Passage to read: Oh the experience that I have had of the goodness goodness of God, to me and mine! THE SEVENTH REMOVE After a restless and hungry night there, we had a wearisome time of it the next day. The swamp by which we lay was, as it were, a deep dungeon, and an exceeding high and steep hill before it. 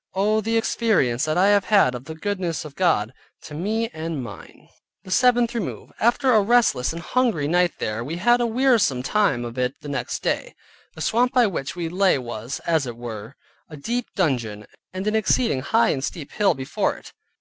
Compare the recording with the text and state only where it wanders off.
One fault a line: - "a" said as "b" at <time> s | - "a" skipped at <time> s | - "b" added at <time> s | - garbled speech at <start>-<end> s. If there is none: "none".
- "goodness" skipped at 2.6 s